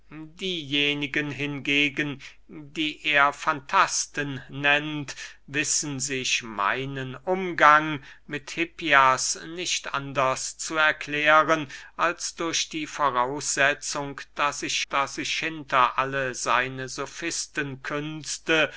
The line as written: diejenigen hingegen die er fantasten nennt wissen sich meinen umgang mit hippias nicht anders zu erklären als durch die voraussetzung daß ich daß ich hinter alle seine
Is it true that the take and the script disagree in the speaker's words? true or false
false